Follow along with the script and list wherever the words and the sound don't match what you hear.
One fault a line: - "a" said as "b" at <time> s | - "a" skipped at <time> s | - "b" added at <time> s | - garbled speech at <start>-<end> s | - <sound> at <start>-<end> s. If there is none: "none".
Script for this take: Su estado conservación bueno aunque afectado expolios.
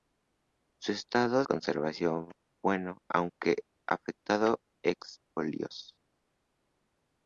none